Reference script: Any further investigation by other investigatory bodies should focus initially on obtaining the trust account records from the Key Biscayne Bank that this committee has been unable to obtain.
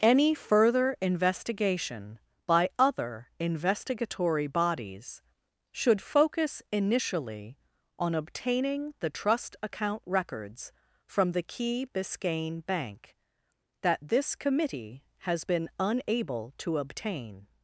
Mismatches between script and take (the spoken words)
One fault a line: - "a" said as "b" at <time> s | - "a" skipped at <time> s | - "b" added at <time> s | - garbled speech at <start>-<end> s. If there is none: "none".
none